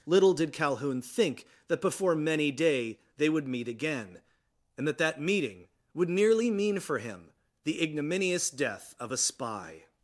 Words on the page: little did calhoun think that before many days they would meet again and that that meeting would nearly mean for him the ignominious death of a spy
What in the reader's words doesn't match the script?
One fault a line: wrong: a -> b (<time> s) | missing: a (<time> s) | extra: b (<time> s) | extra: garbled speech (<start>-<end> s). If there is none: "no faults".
wrong: days -> day (2.5 s)